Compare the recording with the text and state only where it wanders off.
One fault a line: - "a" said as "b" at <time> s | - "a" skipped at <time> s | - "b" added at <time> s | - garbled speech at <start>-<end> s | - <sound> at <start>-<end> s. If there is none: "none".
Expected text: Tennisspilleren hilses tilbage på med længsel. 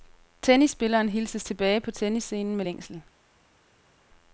- "tennisscenen" added at 1.9 s